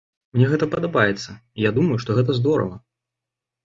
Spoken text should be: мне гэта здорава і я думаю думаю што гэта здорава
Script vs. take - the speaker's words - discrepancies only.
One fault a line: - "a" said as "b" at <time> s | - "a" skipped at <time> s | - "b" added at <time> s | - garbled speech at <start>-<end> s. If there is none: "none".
- "здорава" said as "падабаецца" at 0.7 s
- "думаю" skipped at 2.0 s